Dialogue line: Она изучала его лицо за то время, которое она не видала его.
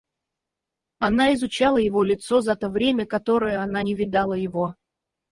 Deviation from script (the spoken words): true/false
false